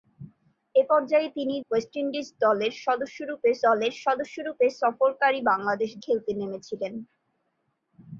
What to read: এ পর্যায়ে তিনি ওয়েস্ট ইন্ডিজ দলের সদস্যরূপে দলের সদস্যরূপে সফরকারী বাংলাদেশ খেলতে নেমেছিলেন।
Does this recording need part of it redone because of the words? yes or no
no